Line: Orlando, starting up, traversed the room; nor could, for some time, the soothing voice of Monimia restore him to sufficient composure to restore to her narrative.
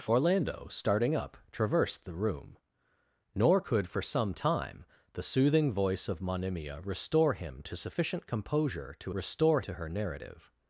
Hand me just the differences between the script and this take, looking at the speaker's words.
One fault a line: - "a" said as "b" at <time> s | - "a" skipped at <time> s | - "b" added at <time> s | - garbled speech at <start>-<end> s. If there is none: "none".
none